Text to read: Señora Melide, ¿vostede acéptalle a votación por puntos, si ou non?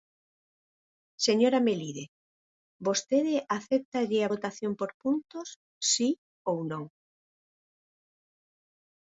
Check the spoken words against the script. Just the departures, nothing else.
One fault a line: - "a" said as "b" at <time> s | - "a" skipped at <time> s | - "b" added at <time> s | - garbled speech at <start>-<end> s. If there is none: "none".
none